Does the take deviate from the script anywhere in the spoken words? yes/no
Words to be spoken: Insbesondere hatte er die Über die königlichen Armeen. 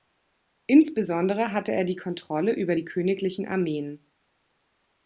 yes